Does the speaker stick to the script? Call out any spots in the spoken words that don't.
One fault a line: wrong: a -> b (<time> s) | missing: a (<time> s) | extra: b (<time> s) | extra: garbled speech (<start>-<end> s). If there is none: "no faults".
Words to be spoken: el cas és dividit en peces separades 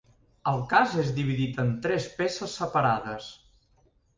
extra: tres (1.9 s)